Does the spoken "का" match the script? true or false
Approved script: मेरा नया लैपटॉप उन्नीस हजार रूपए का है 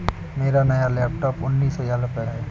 false